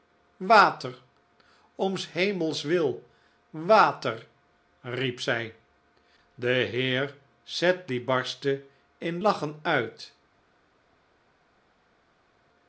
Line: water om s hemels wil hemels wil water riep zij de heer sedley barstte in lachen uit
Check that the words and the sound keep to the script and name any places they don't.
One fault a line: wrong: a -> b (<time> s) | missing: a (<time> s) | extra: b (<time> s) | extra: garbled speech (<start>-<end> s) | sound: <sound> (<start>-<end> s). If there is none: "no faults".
missing: hemels wil (3.0 s)